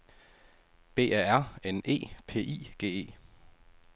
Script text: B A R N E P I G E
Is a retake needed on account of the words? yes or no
no